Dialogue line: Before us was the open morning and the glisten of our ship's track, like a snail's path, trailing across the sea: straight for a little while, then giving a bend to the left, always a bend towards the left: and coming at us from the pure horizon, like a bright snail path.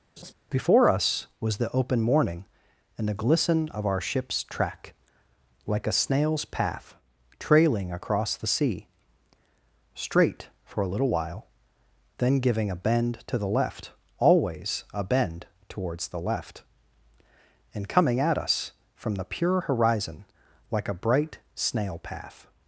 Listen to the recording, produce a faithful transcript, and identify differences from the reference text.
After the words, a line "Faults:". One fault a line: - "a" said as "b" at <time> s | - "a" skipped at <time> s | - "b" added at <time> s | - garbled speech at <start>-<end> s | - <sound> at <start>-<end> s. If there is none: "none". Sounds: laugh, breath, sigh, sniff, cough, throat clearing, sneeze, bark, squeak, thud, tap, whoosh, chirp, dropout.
Before us was the open morning and the glisten of our ship's track, like a snail's path, trailing across the sea: straight for a little while, then giving a bend to the left, always a bend towards the left: and coming at us from the pure horizon, like a bright snail path.
Faults:
- laugh at 0.2-0.3 s